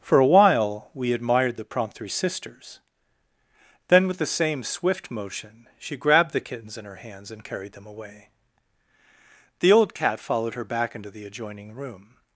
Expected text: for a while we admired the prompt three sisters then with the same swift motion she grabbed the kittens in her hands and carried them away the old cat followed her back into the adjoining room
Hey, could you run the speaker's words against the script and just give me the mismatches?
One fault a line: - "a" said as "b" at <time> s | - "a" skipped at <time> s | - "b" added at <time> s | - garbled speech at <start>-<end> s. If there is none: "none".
none